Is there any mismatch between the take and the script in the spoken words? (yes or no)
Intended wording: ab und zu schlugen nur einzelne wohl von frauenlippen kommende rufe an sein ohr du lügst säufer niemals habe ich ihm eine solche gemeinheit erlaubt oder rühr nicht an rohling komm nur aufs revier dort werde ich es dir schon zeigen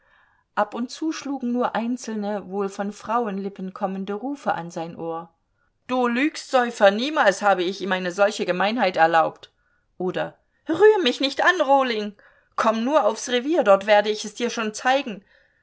yes